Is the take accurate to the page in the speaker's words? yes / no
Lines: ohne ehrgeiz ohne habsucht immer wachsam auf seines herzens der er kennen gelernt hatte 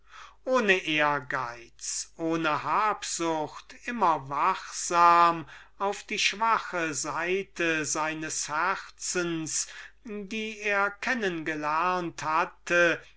no